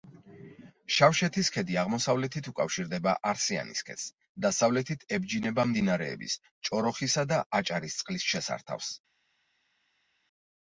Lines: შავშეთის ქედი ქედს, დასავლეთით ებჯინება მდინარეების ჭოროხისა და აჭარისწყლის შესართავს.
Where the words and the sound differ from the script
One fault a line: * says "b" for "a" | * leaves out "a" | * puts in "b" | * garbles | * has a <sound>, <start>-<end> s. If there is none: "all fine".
* puts in "აღმოსავლეთით უკავშირდება არსიანის"